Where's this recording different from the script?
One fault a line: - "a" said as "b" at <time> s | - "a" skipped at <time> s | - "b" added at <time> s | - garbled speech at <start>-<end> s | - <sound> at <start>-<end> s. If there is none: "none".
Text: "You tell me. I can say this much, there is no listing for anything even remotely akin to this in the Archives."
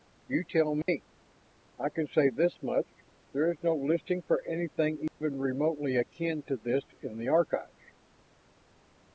- dropout at 0.8-0.9 s
- dropout at 5.1-5.2 s